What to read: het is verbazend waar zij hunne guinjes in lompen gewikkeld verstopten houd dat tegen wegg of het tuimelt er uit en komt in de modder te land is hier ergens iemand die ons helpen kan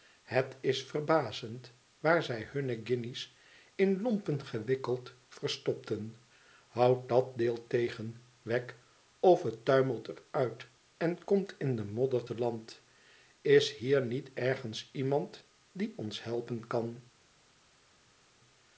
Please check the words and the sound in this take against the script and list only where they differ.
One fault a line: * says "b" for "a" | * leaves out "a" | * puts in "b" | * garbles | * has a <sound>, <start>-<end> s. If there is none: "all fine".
* puts in "deel"
* puts in "niet"